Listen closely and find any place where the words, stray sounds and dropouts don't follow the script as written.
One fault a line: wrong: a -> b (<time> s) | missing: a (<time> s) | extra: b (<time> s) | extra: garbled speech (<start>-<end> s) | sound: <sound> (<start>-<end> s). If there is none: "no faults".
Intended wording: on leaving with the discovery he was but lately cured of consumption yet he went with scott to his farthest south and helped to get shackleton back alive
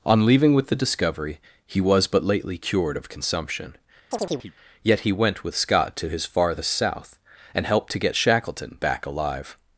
sound: chirp (4.1-4.5 s)